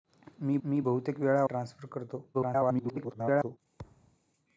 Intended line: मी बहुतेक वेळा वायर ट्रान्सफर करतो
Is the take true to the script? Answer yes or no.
no